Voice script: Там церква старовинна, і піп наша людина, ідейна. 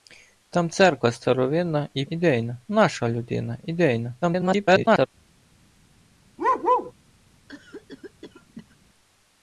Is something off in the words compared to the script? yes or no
yes